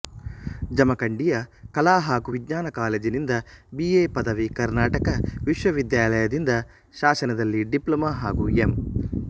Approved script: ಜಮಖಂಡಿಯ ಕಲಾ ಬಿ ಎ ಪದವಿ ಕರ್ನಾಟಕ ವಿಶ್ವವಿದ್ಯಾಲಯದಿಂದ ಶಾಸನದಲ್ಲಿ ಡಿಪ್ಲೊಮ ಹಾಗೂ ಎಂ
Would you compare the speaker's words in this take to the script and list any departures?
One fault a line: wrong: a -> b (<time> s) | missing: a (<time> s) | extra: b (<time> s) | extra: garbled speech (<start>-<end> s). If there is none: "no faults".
extra: ಹಾಗೂ ವಿಜ್ಞಾನ ಕಾಲೇಜಿನಿಂದ (2.0 s)